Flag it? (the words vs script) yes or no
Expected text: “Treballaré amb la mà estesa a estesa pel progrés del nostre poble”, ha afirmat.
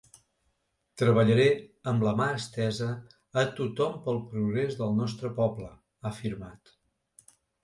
yes